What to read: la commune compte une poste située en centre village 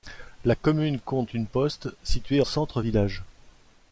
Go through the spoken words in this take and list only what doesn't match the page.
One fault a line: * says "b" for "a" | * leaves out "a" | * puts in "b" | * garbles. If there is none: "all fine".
* leaves out "en"